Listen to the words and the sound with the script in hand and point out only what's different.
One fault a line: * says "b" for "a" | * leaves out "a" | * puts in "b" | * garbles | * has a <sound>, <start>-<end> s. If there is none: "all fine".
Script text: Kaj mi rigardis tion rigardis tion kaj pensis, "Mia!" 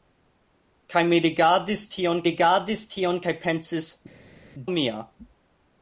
all fine